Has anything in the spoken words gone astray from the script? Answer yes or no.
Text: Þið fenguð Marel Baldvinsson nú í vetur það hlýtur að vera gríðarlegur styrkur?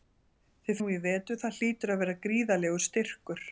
yes